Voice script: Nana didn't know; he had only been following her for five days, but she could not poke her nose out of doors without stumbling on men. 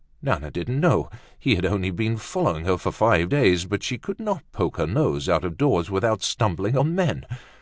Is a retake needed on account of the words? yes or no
no